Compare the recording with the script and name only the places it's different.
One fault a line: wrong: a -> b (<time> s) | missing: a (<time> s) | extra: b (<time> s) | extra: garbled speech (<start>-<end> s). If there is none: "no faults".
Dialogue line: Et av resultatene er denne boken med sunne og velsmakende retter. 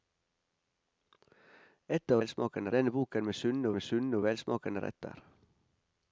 wrong: resultatene -> velsmakende (2.2 s)
extra: med sunne (3.7 s)